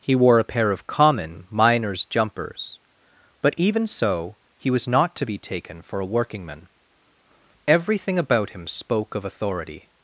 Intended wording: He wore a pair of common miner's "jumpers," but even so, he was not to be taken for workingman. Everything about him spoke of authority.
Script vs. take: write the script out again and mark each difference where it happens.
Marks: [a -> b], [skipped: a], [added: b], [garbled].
He wore a pair of common miner's "jumpers," but even so, he was not to be taken for [added: a] workingman. Everything about him spoke of authority.